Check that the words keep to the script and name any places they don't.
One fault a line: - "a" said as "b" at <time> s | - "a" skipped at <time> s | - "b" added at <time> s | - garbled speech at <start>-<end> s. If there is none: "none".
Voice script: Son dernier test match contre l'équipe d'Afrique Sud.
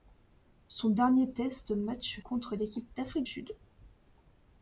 none